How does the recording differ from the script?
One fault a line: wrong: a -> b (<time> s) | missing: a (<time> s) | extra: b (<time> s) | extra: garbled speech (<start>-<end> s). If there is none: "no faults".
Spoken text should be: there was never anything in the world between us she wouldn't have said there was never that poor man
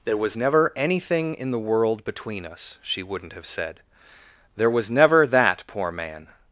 no faults